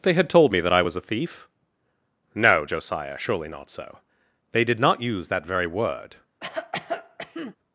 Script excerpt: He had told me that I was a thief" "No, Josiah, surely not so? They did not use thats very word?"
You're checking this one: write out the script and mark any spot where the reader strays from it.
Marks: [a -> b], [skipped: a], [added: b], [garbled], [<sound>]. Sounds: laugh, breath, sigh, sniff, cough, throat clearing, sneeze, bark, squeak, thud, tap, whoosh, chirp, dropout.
[He -> They] had told me that I was a thief" "No, Josiah, surely not so? They did not use [thats -> that] very word?" [cough]